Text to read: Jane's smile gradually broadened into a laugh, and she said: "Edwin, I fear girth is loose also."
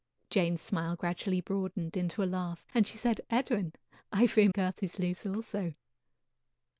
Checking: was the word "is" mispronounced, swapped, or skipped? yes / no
no